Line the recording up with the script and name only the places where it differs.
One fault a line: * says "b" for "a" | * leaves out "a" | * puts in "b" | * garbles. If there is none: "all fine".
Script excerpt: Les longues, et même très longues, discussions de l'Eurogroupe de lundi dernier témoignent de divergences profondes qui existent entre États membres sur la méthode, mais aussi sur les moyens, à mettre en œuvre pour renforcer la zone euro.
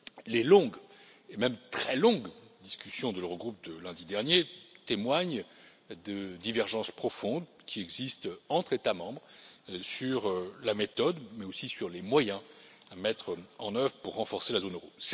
all fine